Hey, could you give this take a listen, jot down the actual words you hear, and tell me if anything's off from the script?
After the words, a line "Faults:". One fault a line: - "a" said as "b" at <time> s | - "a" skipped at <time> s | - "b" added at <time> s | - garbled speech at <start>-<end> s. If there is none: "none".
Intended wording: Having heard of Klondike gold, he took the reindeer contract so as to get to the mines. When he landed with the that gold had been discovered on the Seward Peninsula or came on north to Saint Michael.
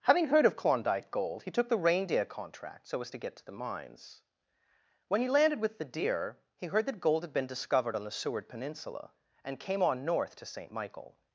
Having heard of Klondike gold, he took the reindeer contract so as to get to the mines. When he landed with the deer he heard that gold had been discovered on the Seward Peninsula and came on north to Saint Michael.
Faults:
- "deer he heard" added at 5.8 s
- "or" said as "and" at 9.4 s